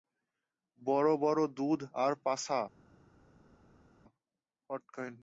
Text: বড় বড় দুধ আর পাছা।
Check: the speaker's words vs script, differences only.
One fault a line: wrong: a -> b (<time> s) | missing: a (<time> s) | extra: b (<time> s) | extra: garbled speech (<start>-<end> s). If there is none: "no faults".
no faults